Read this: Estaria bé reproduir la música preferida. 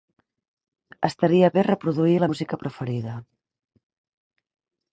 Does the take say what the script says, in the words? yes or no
yes